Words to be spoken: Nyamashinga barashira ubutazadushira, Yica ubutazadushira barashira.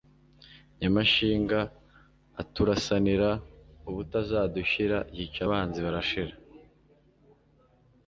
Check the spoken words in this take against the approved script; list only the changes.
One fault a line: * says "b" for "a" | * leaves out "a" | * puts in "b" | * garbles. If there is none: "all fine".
* says "aturasanira" for "barashira"
* says "abanzi" for "ubutazadushira"